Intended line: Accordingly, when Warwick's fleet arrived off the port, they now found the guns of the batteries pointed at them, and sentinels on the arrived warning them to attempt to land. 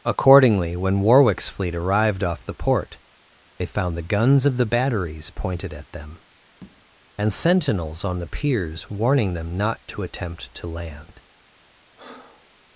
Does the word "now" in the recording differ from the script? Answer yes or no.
yes